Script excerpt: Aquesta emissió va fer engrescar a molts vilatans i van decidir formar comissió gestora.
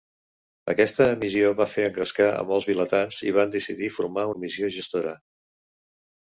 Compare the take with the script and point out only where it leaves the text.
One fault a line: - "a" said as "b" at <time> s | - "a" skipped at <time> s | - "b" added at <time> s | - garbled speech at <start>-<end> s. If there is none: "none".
none